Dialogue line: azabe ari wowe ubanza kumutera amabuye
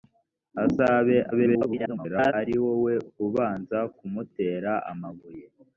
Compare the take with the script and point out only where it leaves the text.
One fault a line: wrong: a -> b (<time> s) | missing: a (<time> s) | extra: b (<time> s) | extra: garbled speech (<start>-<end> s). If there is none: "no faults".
extra: garbled speech (1.3-2.3 s)